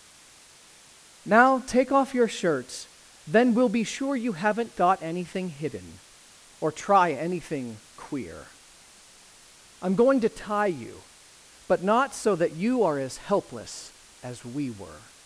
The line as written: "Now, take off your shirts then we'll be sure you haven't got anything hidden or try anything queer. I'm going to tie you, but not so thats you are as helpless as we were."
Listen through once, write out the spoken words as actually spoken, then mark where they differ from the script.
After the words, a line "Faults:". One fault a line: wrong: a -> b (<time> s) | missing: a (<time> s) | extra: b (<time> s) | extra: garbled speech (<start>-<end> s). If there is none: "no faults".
"Now, take off your shirts then we'll be sure you haven't got anything hidden or try anything queer. I'm going to tie you, but not so that you are as helpless as we were."
Faults:
wrong: thats -> that (12.4 s)